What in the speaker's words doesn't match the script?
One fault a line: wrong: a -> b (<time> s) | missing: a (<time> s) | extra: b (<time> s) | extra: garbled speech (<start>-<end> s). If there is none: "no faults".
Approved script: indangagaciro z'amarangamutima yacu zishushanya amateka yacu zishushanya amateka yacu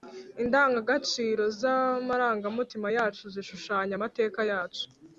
missing: zishushanya amateka yacu (4.8 s)